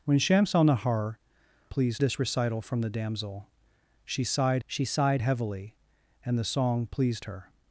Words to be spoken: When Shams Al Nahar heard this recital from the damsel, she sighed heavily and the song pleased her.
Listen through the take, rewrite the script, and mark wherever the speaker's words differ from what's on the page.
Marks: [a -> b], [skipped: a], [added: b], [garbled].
When Shams Al Nahar [heard -> pleased] this recital from the damsel, she sighed [added: she sighed] heavily and the song pleased her.